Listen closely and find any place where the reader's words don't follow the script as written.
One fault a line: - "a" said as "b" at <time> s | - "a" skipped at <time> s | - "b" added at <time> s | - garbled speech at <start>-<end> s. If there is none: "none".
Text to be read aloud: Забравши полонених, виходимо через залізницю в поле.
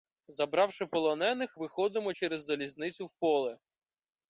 none